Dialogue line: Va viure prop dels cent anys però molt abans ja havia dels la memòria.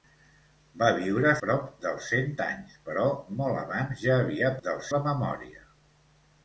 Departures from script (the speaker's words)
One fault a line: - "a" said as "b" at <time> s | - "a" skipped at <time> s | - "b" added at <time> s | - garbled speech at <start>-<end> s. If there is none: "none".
none